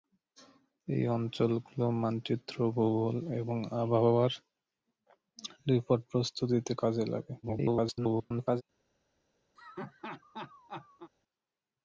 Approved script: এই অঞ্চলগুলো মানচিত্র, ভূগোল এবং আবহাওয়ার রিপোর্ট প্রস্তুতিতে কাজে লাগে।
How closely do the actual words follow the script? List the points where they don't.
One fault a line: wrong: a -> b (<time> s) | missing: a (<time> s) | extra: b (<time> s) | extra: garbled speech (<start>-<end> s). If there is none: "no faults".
extra: garbled speech (7.4-8.6 s)